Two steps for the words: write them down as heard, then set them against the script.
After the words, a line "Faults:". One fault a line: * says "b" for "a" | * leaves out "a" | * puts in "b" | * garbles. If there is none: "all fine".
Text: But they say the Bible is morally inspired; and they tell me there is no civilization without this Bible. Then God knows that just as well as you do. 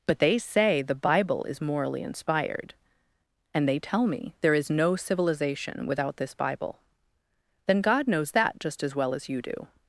But they say the Bible is morally inspired; and they tell me there is no civilization without this Bible. Then God knows that just as well as you do.
Faults:
all fine